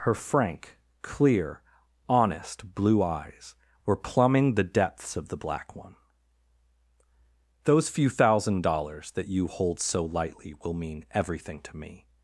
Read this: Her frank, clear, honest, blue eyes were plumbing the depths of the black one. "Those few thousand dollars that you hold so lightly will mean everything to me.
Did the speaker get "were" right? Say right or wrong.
right